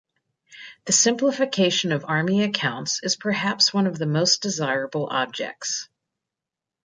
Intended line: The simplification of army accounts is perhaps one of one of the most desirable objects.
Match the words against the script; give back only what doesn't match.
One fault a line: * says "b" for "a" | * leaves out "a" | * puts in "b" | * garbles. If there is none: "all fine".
* leaves out "one of"